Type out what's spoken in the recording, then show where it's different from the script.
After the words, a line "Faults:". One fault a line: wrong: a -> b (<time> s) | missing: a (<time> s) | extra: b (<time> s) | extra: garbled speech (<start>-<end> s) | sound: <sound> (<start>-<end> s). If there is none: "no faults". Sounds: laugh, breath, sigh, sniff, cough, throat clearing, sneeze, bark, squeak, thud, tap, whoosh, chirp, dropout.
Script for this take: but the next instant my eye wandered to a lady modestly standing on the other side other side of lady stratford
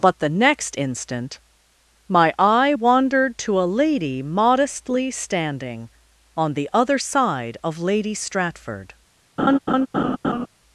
but the next instant my eye wandered to a lady modestly standing on the other side of lady stratford
Faults:
missing: other side (7.6 s)
sound: laugh (9.4-10.5 s)